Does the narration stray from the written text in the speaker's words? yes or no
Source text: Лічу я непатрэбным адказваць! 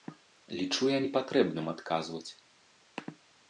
no